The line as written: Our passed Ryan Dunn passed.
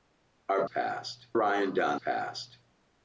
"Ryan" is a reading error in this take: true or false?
false